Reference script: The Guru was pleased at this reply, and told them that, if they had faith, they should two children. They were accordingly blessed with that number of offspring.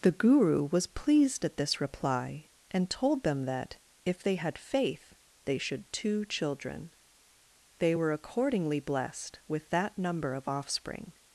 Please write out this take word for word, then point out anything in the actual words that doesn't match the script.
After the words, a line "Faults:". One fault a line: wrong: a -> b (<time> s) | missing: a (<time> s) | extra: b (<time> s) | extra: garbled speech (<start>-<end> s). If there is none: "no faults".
The Guru was pleased at this reply, and told them that, if they had faith, they should two children. They were accordingly blessed with that number of offspring.
Faults:
no faults